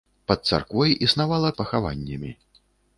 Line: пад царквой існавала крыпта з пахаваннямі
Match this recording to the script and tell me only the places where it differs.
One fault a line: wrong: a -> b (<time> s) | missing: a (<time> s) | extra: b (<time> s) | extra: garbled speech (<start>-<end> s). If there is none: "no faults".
missing: крыпта (1.5 s)